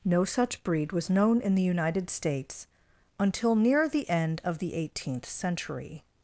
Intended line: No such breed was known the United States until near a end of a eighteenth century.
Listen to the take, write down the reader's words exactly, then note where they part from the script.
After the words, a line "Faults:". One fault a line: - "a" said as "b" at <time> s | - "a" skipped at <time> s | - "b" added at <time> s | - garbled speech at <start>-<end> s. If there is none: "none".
No such breed was known in the United States until near the end of the eighteenth century.
Faults:
- "in" added at 1.4 s
- "a" said as "the" at 3.9 s
- "a" said as "the" at 4.6 s